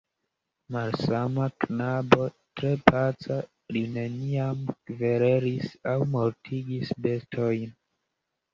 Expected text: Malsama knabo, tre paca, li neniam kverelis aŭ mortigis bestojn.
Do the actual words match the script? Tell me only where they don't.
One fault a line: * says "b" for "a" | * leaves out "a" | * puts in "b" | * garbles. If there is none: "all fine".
all fine